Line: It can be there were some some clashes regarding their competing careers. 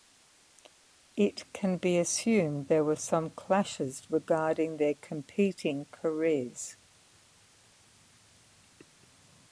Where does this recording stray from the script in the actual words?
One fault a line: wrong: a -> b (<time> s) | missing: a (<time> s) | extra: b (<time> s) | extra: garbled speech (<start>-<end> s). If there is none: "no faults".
extra: assumed (2.0 s)
missing: some (3.3 s)